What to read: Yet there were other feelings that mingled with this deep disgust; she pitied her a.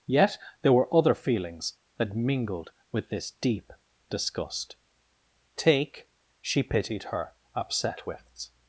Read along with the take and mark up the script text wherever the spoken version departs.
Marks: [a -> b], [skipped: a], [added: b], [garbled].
Yet there were other feelings that mingled with this deep disgust; [added: take] she pitied her [a. -> upset wits]